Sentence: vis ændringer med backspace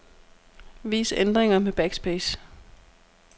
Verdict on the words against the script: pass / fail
pass